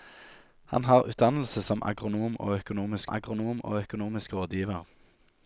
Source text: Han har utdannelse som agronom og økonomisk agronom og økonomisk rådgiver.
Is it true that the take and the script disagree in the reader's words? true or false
false